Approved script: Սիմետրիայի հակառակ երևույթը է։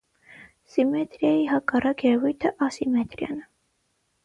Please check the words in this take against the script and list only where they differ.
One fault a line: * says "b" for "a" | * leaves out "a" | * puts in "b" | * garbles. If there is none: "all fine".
* puts in "ասիմետրիան"